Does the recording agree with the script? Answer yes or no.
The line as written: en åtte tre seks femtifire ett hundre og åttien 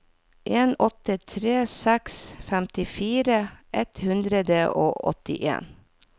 yes